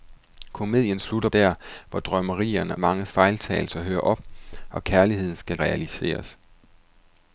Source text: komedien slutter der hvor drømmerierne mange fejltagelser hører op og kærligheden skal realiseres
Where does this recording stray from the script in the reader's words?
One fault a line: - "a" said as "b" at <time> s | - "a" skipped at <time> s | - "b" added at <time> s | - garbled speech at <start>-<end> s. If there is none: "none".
none